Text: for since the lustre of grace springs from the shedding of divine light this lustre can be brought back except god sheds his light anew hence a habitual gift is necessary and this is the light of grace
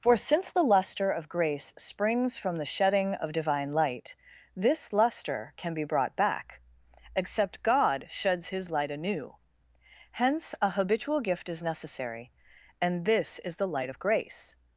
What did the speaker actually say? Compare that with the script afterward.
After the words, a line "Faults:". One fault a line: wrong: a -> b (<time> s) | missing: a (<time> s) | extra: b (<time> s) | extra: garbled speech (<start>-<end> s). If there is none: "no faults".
for since the lustre of grace springs from the shedding of divine light this lustre can be brought back except god sheds his light anew hence a habitual gift is necessary and this is the light of grace
Faults:
no faults